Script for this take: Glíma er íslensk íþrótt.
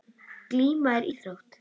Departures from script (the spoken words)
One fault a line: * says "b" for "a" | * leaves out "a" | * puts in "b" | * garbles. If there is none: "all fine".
* leaves out "íslensk"